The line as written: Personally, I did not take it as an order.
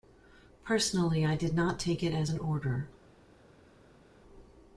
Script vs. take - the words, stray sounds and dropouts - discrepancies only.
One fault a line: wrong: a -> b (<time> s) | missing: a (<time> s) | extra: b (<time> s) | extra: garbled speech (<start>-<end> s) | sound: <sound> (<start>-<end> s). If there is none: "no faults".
no faults